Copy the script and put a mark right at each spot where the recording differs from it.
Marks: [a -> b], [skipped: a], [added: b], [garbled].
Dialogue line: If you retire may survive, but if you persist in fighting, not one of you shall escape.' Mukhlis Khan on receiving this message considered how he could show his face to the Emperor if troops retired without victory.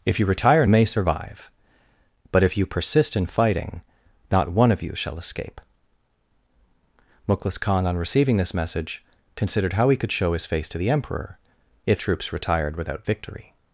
If you retire may survive, but if you persist in fighting, not one of you shall escape.' Mukhlis Khan on receiving this message considered how he could show his face to the Emperor if troops retired without victory.